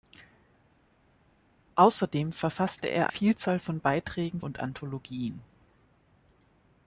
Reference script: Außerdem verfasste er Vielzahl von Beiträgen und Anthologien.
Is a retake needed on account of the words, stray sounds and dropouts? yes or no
no